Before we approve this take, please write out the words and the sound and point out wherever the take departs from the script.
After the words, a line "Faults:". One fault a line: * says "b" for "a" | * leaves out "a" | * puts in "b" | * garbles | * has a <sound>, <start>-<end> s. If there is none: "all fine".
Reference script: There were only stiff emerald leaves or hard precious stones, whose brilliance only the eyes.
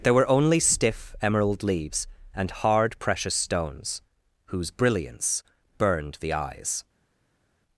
There were only stiff emerald leaves and hard precious stones, whose brilliance burned the eyes.
Faults:
* says "and" for "or"
* says "burned" for "only"